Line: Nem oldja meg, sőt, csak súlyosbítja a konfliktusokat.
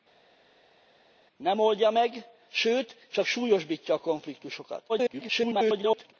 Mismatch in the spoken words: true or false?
true